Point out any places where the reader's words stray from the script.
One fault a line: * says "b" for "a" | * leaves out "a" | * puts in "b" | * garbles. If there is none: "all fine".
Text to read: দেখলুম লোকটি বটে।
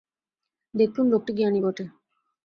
* puts in "জ্ঞানী"